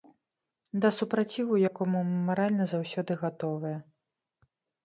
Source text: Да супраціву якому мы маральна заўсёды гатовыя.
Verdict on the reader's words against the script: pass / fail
pass